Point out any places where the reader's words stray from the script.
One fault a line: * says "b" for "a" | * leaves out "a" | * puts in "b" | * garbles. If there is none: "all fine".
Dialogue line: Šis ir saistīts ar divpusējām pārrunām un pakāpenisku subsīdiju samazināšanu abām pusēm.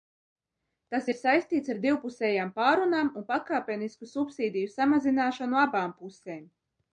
* says "Tas" for "Šis"